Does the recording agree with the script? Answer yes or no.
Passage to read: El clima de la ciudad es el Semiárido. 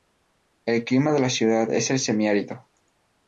yes